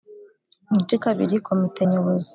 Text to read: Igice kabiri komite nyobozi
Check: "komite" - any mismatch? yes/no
no